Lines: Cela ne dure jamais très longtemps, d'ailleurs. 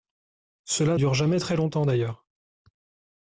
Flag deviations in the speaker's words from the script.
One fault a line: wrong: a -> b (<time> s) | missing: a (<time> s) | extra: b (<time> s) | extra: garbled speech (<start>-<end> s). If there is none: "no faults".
missing: ne (1.0 s)